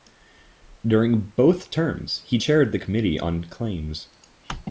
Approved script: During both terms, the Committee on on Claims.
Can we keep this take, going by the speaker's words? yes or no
no